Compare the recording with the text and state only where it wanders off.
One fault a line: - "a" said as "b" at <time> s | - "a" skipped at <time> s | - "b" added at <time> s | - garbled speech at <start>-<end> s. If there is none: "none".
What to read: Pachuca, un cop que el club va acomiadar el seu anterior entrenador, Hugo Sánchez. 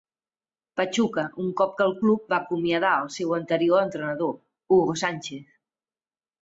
none